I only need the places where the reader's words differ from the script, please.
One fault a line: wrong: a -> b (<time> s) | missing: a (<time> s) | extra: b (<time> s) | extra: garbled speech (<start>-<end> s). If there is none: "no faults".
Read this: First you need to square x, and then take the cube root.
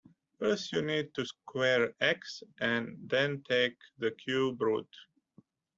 no faults